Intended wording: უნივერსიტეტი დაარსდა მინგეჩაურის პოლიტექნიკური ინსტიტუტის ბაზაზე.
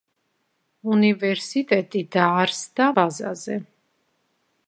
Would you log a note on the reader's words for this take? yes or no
yes